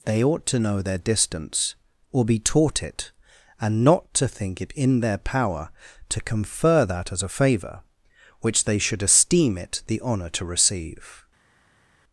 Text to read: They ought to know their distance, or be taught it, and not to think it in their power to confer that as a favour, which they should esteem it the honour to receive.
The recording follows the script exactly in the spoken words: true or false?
true